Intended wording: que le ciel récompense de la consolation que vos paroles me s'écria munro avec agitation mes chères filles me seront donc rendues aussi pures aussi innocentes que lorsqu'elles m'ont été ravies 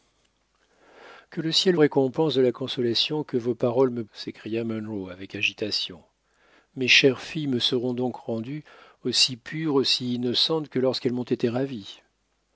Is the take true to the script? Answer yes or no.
yes